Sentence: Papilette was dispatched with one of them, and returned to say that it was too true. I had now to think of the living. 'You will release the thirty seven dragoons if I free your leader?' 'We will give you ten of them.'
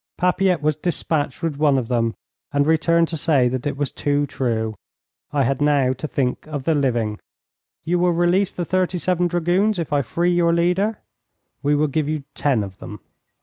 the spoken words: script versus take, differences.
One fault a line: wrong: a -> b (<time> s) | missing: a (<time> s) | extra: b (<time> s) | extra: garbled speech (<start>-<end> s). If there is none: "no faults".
no faults